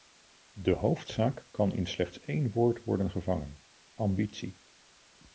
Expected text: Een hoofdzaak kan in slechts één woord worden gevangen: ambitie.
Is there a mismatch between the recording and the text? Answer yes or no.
yes